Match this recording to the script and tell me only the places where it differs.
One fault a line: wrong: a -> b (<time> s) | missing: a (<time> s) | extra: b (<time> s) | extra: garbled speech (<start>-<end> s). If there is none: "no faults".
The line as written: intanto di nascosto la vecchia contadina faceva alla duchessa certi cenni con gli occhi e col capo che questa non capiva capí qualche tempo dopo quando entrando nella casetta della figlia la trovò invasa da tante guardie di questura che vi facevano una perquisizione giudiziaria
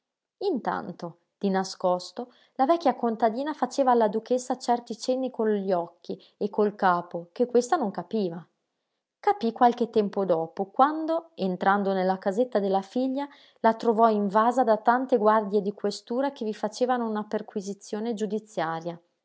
no faults